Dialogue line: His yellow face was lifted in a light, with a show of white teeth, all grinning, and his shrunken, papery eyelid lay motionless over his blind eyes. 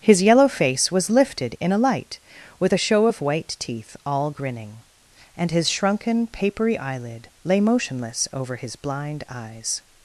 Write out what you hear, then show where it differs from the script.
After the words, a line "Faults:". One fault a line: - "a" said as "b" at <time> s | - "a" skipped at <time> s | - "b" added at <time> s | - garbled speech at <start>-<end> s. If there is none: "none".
His yellow face was lifted in a light, with a show of white teeth, all grinning, and his shrunken, papery eyelid lay motionless over his blind eyes.
Faults:
none